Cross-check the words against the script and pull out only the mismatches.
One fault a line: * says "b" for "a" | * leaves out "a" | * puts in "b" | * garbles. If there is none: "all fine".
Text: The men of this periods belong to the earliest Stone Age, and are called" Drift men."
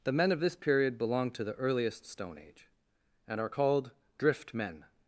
* says "period" for "periods"